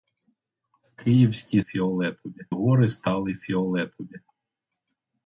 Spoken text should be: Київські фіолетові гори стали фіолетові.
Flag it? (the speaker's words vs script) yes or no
no